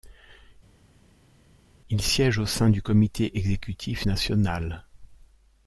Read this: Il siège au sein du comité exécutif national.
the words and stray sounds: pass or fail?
pass